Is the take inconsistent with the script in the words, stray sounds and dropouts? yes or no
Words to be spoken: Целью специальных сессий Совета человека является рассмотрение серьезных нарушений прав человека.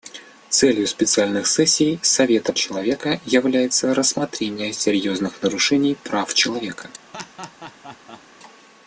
yes